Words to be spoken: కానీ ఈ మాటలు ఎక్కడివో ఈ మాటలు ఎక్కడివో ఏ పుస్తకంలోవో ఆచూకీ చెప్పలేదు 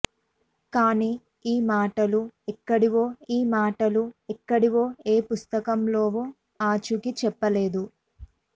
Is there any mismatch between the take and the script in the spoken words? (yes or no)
no